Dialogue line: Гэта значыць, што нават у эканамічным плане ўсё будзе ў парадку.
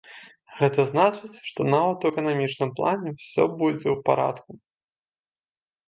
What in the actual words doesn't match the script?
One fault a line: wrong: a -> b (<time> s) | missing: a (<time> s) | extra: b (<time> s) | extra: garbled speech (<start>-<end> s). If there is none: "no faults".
no faults